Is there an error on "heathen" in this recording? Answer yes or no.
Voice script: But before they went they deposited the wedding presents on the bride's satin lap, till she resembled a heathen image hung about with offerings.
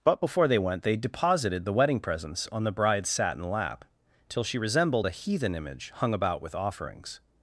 no